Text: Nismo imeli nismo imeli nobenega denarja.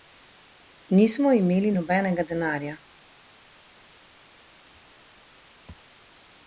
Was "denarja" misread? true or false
false